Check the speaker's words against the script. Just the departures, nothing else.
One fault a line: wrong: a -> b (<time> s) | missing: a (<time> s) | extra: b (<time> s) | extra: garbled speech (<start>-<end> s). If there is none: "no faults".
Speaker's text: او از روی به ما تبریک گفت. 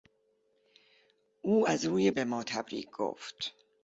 no faults